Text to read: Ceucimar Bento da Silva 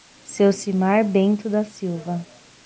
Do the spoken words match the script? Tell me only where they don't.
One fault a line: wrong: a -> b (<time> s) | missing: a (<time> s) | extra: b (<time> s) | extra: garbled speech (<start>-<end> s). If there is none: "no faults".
no faults